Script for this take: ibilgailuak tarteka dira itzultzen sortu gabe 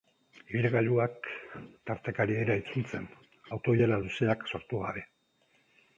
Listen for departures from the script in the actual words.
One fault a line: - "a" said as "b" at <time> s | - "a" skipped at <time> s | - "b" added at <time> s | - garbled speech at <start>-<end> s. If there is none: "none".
- "ari" added at 2.2 s
- "auto ilara luzeak" added at 3.6 s